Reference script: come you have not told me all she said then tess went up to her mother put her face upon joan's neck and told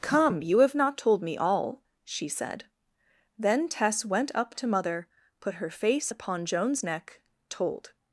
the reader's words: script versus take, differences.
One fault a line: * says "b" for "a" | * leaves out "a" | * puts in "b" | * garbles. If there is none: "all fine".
* leaves out "her"
* leaves out "and"